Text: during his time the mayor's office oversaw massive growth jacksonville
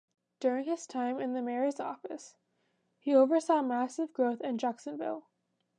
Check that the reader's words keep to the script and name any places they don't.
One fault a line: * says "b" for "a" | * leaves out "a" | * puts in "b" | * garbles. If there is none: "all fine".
* puts in "in"
* puts in "he"
* puts in "in"